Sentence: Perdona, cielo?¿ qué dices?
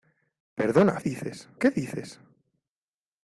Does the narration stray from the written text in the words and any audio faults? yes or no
yes